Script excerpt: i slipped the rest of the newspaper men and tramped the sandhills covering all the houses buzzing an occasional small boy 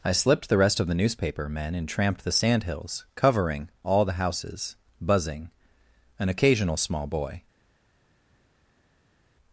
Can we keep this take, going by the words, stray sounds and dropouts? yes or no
yes